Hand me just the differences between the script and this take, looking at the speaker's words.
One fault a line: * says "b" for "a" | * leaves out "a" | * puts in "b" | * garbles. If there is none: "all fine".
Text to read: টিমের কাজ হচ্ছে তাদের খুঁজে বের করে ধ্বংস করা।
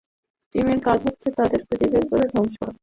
all fine